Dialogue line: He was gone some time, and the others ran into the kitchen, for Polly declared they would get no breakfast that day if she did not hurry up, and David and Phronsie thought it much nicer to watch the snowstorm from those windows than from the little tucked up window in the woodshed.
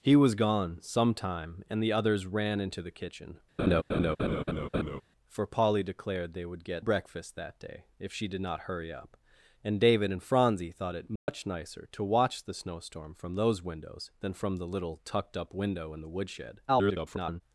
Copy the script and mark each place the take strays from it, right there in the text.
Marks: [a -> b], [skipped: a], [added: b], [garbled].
He was gone some time, and the others ran into the kitchen, for Polly declared they would get [skipped: no] breakfast that day if she did not hurry up, and David and Phronsie thought it much nicer to watch the snowstorm from those windows than from the little tucked up window in the woodshed. [garbled]